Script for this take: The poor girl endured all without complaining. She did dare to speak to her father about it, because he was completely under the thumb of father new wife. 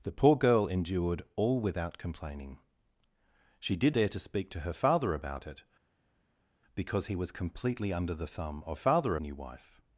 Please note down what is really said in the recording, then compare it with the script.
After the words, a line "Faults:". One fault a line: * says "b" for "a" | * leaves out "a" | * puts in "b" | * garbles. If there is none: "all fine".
The poor girl endured all without complaining. She did dare to speak to her father about it, because he was completely under the thumb of father new wife.
Faults:
all fine